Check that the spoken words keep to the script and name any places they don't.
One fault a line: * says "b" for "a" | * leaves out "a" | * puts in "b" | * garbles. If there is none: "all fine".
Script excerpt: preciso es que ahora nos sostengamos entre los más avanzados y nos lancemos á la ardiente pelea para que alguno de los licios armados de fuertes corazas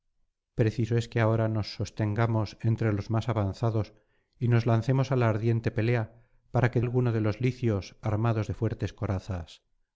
all fine